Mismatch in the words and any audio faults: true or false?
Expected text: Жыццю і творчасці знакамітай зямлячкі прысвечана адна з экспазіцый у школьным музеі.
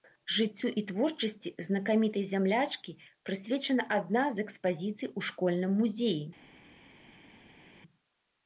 false